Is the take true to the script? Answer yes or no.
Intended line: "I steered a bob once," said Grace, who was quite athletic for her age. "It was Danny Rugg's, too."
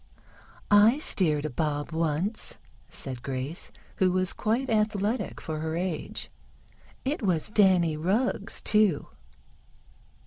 yes